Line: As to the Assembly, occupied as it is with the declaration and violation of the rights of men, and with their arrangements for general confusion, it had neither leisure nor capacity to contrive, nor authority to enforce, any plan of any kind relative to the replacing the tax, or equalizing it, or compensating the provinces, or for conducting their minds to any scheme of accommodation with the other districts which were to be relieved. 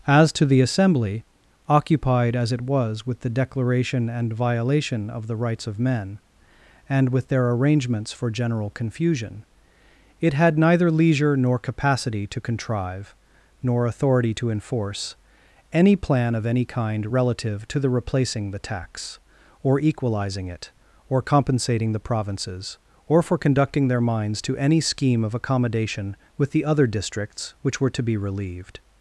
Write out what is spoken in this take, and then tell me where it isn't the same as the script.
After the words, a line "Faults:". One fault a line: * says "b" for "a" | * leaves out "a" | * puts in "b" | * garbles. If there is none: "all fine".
As to the Assembly, occupied as it was with the declaration and violation of the rights of men, and with their arrangements for general confusion, it had neither leisure nor capacity to contrive, nor authority to enforce, any plan of any kind relative to the replacing the tax, or equalizing it, or compensating the provinces, or for conducting their minds to any scheme of accommodation with the other districts which were to be relieved.
Faults:
* says "was" for "is"